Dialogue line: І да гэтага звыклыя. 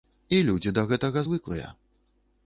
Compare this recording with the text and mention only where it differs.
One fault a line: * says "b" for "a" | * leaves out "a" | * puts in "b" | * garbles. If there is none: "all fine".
* puts in "людзі"